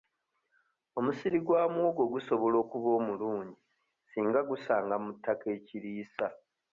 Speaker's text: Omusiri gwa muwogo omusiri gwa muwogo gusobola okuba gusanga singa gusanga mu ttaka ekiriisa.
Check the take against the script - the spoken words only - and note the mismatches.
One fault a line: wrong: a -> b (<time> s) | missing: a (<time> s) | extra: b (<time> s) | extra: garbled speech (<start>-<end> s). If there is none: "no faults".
missing: omusiri gwa muwogo (2.0 s)
wrong: gusanga -> omulungi (3.0 s)